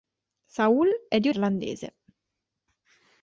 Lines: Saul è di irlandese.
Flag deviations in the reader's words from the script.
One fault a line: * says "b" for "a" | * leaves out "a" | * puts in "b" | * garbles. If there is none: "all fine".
all fine